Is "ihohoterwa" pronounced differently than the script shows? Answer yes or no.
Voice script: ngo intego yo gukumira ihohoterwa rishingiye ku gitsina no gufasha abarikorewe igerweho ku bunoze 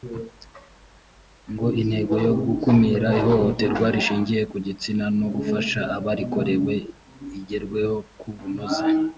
no